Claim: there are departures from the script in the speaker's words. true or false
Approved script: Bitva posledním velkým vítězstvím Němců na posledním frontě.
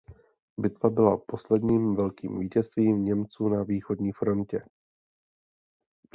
true